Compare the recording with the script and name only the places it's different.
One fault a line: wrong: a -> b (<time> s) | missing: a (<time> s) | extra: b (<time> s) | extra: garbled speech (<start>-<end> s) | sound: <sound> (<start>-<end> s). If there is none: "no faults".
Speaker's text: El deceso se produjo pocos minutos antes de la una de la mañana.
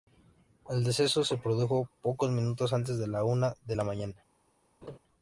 sound: laugh (4.8-5.0 s)